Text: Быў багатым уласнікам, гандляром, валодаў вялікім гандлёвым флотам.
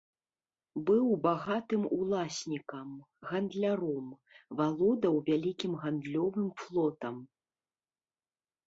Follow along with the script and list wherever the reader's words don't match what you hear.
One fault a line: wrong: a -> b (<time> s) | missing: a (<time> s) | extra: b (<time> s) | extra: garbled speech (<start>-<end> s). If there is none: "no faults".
no faults